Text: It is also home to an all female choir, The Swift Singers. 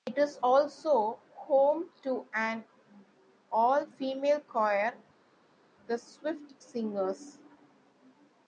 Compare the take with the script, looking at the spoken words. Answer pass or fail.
pass